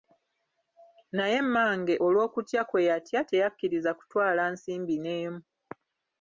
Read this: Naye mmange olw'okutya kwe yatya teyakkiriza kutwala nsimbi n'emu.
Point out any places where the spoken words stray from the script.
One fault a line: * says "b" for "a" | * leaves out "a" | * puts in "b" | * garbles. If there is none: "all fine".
all fine